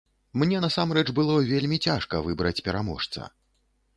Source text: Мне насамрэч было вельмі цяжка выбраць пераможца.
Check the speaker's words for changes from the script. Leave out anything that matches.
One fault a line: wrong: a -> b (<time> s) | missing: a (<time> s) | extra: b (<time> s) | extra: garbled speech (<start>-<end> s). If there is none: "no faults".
no faults